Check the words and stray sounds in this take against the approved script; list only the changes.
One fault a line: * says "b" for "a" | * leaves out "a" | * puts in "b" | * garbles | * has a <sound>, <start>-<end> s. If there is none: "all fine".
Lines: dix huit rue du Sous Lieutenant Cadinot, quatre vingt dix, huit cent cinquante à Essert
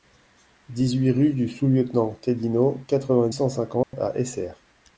* leaves out "dix huit"
* has a dropout, 3.8-3.9 s